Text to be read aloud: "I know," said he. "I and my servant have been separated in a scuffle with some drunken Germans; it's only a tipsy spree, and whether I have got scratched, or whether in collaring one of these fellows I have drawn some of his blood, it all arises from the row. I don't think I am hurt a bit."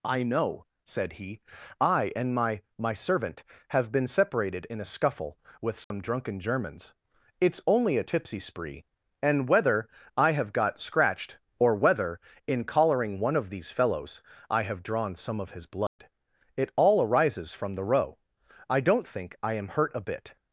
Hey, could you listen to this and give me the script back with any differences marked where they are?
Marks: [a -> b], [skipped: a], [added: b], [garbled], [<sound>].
"I know," said he. "I and my [added: my] servant have been separated in a scuffle with some [dropout] drunken Germans; it's only a tipsy spree, and whether I have got scratched, or whether in collaring one of these fellows I have drawn some of his blood, [dropout] it all arises from the row. I don't think I am hurt a bit."